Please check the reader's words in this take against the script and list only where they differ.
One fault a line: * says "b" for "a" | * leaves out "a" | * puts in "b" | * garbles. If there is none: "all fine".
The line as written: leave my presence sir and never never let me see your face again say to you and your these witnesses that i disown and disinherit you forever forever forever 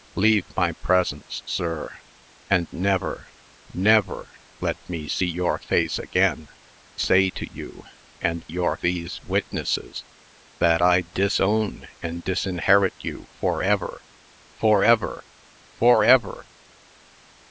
all fine